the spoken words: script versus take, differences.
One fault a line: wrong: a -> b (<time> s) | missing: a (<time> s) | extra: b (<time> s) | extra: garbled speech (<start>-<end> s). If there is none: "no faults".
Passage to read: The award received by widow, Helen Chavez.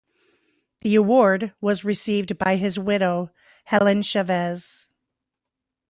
extra: was (1.6 s)
extra: his (2.5 s)